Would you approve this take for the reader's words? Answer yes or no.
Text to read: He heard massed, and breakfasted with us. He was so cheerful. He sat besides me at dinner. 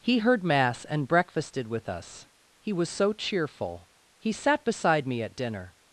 no